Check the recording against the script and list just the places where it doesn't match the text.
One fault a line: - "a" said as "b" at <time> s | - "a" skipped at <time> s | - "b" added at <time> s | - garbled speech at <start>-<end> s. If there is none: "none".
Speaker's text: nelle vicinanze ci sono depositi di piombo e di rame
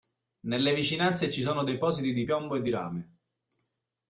none